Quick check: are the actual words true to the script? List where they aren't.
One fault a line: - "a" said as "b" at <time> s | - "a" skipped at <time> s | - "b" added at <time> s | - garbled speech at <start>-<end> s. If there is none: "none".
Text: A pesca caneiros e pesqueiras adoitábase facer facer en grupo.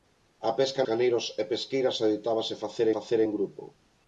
none